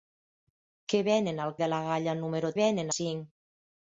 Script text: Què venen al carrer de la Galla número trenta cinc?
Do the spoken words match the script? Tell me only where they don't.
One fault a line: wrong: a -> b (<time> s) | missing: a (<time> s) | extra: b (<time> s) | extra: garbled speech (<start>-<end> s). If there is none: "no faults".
missing: carrer (1.5 s)
wrong: trenta -> venen (2.6 s)